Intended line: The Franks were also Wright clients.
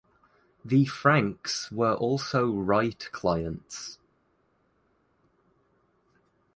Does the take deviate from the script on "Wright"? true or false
false